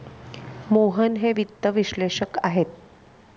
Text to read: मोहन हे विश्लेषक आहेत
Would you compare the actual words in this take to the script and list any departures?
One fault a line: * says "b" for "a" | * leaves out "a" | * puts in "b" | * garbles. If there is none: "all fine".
* puts in "वित्त"